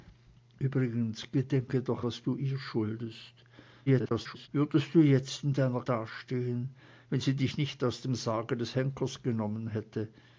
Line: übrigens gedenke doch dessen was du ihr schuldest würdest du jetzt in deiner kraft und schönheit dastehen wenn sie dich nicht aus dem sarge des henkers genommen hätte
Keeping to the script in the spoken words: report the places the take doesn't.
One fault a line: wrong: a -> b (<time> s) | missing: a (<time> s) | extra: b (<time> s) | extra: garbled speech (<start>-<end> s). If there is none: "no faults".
missing: dessen (2.0 s)
extra: garbled speech (3.9-4.5 s)
missing: kraft und schönheit (5.8 s)